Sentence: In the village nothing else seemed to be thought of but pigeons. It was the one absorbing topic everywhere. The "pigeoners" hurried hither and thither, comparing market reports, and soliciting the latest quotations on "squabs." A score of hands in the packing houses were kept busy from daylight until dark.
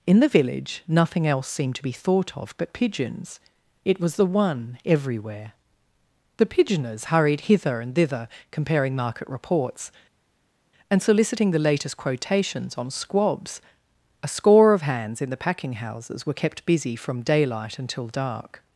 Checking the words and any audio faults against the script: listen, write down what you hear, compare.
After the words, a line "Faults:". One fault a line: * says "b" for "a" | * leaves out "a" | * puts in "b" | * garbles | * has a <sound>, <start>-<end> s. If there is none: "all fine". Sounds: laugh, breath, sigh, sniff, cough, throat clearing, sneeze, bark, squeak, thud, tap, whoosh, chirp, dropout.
In the village nothing else seemed to be thought of but pigeons. It was the one everywhere. The "pigeoners" hurried hither and thither, comparing market reports, and soliciting the latest quotations on "squabs." A score of hands in the packing houses were kept busy from daylight until dark.
Faults:
* leaves out "absorbing topic"